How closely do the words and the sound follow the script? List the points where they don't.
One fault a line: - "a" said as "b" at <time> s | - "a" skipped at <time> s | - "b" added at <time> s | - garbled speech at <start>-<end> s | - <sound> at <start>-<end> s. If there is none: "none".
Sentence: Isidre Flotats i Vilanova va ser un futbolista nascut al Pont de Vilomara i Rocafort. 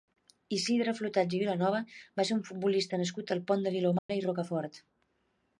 - dropout at 4.0-4.1 s